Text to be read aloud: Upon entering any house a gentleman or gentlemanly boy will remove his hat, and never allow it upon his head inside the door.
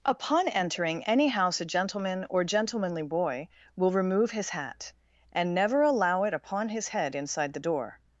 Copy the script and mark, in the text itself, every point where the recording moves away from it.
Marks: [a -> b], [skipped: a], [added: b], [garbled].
Upon entering any house a gentleman or gentlemanly boy will remove his hat, and never allow it upon his head inside the door.